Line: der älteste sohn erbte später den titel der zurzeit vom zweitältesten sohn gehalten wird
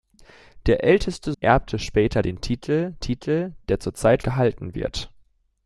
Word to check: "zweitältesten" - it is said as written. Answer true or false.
false